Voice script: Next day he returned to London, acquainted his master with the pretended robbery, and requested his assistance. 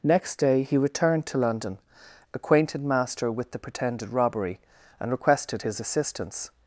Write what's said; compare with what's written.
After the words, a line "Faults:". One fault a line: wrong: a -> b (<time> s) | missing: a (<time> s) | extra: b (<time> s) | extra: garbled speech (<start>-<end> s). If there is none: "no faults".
Next day he returned to London, acquainted master with the pretended robbery, and requested his assistance.
Faults:
missing: his (2.8 s)